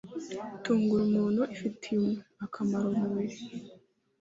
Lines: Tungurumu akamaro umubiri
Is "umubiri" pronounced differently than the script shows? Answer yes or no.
no